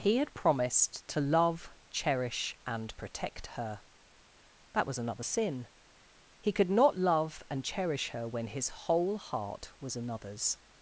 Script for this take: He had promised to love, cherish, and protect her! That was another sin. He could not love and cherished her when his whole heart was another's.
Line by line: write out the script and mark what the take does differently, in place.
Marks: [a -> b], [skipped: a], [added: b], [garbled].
He had promised to love, cherish, and protect her! That was another sin. He could not love and [cherished -> cherish] her when his whole heart was another's.